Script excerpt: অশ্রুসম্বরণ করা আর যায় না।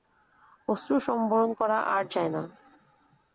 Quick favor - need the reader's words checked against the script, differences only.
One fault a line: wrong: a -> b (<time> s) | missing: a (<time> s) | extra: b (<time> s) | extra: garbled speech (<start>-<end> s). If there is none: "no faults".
no faults